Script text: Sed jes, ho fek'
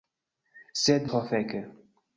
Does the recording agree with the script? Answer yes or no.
no